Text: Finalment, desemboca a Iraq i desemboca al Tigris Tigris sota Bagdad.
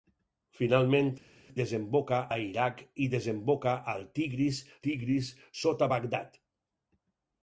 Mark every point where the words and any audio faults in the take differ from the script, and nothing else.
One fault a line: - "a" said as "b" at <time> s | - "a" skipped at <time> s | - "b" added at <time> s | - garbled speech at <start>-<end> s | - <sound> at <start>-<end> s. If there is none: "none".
none